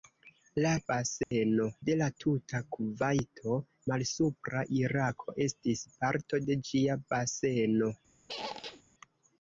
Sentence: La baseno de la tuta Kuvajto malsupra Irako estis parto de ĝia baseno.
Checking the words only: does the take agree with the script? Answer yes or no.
yes